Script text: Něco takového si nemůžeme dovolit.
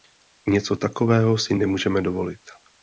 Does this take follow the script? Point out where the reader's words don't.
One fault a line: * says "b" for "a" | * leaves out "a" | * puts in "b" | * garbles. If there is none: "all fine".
all fine